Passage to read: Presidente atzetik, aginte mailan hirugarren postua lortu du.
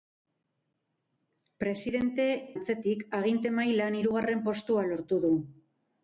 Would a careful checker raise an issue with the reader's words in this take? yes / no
no